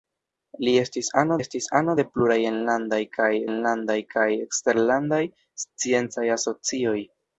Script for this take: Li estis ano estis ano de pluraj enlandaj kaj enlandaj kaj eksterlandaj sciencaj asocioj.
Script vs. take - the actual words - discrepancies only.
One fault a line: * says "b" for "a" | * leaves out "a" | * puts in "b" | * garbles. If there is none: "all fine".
all fine